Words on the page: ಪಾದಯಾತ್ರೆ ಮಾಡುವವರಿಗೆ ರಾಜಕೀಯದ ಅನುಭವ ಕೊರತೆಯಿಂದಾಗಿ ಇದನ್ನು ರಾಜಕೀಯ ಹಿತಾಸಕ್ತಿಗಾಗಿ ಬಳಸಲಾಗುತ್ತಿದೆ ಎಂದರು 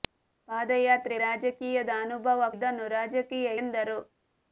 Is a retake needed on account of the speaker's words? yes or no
yes